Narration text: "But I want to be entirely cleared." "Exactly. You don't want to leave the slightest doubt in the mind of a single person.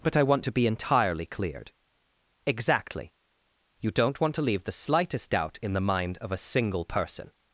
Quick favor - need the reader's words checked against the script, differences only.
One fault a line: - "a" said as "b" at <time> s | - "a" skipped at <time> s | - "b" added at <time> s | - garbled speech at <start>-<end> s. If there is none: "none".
none